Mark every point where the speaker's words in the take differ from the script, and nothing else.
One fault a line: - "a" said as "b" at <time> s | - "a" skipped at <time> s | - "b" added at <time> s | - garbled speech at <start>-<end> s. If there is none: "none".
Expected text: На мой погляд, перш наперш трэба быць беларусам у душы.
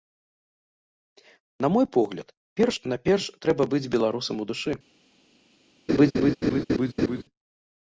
none